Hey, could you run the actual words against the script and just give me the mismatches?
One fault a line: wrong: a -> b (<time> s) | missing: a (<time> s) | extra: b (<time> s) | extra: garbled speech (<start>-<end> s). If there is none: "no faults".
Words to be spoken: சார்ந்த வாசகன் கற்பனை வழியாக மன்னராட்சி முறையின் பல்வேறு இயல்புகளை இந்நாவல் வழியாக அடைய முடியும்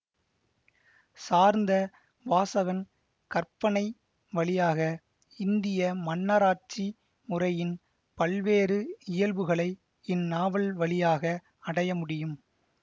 extra: இந்திய (5.4 s)